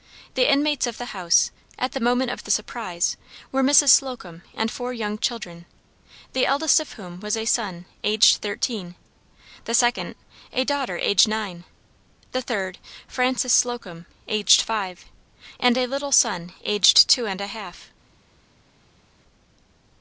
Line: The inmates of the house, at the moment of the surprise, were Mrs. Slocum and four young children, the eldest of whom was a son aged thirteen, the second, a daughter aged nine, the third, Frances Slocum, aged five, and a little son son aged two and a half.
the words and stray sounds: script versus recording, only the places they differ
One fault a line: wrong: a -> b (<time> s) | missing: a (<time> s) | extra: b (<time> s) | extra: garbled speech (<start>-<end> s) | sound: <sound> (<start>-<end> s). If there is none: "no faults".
missing: son (16.5 s)